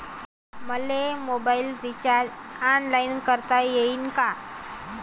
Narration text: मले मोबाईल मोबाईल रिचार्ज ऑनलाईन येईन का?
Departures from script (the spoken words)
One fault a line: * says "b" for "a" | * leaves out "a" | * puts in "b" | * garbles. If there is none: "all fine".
* leaves out "मोबाईल"
* puts in "करता"